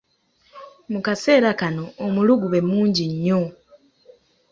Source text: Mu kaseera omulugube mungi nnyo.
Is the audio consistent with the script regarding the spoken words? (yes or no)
no